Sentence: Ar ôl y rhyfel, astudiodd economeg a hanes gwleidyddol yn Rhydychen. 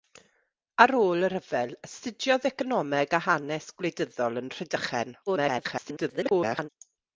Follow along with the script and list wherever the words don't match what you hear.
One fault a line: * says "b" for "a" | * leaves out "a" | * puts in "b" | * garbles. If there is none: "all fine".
* garbles